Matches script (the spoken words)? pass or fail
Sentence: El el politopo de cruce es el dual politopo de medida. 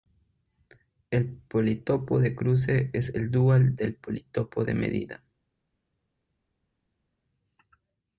fail